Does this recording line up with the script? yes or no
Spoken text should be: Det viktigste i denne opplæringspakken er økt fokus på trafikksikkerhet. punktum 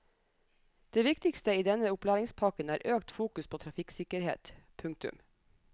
yes